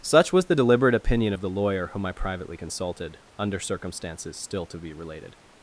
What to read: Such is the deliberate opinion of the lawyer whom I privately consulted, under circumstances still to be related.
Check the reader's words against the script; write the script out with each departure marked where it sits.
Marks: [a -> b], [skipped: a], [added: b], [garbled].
Such [is -> was] the deliberate opinion of the lawyer whom I privately consulted, under circumstances still to be related.